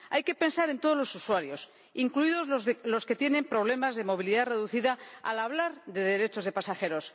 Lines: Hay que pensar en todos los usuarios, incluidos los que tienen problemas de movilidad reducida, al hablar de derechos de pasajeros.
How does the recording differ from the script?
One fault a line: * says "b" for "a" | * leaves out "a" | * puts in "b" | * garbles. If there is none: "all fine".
all fine